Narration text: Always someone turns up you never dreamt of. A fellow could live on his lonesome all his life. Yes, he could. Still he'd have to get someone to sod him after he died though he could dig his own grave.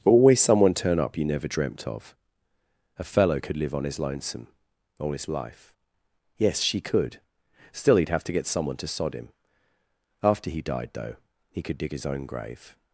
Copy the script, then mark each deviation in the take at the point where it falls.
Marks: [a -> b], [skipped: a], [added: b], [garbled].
Always someone [turns -> turn] up you never dreamt of. A fellow could live on his lonesome all his life. Yes, [he -> she] could. Still he'd have to get someone to sod him after he died though he could dig his own grave.